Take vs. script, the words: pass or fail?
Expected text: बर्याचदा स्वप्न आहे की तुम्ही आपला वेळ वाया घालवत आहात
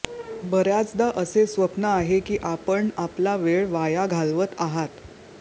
fail